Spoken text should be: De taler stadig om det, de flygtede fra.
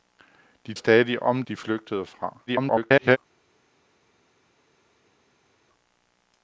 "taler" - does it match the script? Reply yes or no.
no